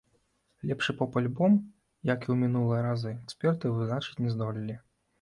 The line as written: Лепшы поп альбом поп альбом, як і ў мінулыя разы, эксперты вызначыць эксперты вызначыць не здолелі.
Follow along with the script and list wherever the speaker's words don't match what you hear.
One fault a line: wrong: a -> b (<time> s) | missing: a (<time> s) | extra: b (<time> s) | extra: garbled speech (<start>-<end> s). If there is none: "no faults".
missing: поп альбом (1.6 s)
missing: эксперты вызначыць (4.2 s)